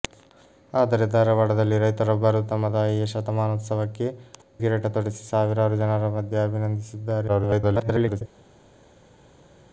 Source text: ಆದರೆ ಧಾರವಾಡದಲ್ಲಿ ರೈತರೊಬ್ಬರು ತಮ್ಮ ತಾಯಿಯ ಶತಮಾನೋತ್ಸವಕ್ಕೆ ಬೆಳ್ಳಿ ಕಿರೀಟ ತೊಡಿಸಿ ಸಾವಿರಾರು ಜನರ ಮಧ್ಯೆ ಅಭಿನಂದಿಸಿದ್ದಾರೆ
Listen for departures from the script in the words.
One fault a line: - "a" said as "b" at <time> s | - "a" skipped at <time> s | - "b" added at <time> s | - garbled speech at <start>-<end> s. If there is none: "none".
- "ಬೆಳ್ಳಿ" skipped at 4.1 s
- garbled speech at 7.3-8.2 s